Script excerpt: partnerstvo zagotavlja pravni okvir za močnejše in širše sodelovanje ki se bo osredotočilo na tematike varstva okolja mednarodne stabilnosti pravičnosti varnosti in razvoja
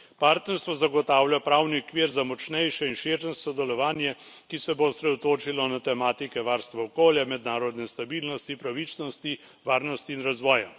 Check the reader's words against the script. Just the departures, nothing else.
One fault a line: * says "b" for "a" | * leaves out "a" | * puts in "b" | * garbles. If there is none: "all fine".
all fine